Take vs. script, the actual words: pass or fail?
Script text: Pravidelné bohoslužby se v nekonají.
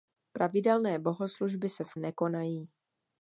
pass